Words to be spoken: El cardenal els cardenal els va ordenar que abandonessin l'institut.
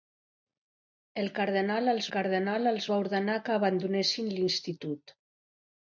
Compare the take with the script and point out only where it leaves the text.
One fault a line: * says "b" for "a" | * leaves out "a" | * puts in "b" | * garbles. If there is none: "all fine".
all fine